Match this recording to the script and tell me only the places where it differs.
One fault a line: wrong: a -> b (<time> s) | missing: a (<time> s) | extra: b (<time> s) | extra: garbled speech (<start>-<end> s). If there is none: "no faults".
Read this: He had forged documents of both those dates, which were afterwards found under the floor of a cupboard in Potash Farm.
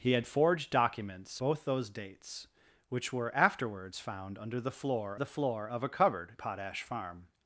missing: of (1.4 s)
extra: the floor (5.1 s)
missing: in (6.4 s)